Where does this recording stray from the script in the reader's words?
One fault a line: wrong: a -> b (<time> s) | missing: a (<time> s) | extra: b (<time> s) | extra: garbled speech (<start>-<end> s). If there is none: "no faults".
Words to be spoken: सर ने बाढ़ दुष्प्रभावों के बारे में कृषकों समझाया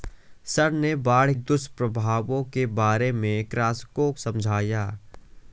no faults